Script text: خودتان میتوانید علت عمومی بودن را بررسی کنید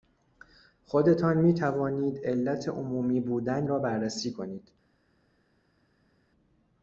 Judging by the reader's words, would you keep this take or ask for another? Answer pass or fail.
pass